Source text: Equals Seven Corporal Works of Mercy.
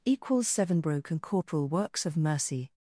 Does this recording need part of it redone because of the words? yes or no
yes